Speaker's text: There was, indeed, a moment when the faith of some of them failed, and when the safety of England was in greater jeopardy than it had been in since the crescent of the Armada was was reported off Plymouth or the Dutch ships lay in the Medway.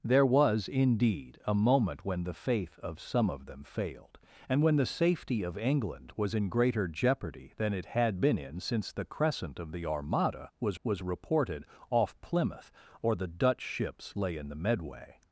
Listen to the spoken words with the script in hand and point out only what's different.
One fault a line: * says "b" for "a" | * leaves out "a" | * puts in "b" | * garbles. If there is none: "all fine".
all fine